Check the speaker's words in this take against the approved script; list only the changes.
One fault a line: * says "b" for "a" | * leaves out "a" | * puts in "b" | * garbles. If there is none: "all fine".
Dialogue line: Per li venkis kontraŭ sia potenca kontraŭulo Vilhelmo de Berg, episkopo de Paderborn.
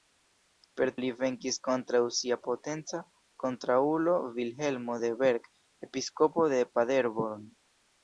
all fine